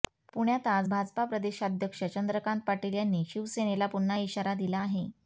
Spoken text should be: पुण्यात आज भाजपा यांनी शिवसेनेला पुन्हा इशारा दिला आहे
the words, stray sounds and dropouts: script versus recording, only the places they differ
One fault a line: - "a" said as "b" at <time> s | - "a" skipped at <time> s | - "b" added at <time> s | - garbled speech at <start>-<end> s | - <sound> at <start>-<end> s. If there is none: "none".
- "प्रदेशाध्यक्ष चंद्रकांत पाटील" added at 1.2 s